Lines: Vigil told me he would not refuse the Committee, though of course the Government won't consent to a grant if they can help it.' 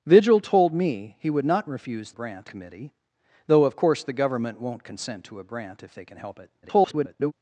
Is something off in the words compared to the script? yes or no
yes